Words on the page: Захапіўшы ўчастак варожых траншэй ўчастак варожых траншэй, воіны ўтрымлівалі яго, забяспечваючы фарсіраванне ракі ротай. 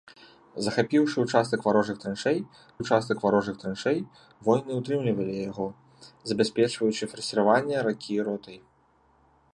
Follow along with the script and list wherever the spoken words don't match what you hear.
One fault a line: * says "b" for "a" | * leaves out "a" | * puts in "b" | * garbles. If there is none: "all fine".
all fine